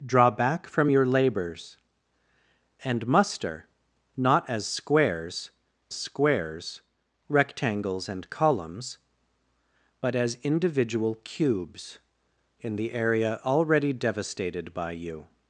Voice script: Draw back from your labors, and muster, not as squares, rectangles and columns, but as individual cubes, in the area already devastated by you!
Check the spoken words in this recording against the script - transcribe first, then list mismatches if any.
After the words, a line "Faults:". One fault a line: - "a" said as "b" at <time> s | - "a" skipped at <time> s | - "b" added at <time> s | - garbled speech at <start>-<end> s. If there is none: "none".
Draw back from your labors, and muster, not as squares squares, rectangles and columns, but as individual cubes, in the area already devastated by you!
Faults:
- "squares" added at 5.9 s